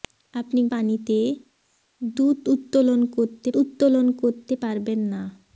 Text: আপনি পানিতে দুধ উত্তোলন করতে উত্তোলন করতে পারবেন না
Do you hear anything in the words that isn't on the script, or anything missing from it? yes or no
no